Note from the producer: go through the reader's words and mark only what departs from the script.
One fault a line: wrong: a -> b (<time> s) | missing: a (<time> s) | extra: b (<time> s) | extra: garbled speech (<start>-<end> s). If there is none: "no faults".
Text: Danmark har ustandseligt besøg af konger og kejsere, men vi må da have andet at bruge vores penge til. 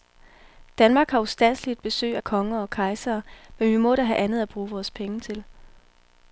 no faults